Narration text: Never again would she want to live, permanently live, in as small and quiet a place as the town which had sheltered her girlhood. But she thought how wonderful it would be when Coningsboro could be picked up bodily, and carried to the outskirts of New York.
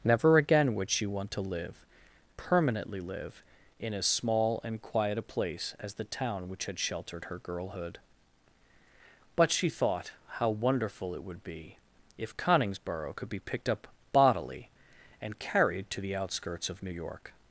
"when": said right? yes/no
no